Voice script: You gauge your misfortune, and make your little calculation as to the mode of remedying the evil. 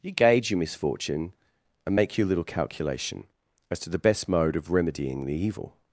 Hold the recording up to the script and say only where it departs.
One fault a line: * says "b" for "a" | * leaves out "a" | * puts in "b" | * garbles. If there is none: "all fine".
* puts in "best"